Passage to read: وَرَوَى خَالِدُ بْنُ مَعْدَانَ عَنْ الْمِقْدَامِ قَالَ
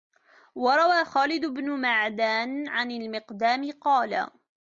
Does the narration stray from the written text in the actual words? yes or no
no